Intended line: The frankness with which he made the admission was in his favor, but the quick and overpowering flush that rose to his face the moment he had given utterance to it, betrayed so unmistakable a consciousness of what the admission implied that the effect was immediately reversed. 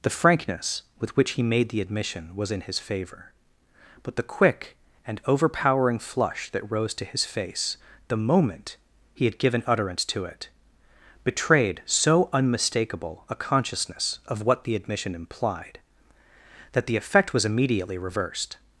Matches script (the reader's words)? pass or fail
pass